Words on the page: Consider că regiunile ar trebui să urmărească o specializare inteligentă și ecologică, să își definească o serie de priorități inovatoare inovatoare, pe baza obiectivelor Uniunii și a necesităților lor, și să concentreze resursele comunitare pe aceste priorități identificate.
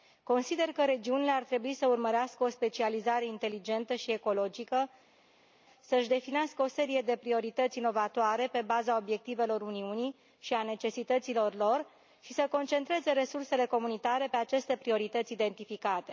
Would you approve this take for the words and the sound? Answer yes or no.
no